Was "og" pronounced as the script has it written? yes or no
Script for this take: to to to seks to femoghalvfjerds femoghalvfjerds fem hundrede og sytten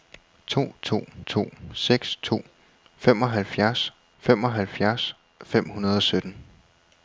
yes